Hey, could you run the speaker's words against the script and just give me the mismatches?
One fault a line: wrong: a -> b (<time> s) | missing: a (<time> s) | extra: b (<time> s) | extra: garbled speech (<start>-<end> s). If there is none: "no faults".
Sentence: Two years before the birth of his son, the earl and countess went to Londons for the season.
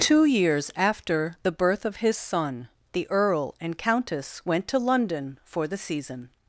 wrong: before -> after (0.8 s)
wrong: Londons -> London (4.8 s)